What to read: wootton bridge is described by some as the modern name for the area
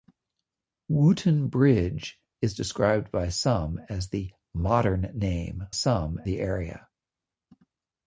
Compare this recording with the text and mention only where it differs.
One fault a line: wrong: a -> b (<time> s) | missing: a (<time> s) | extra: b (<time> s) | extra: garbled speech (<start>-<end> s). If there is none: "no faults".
wrong: for -> some (5.7 s)